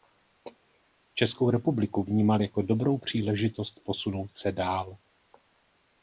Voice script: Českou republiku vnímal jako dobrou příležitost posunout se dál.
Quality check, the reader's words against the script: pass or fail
pass